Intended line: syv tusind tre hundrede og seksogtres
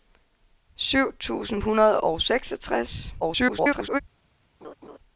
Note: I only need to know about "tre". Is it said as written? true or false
false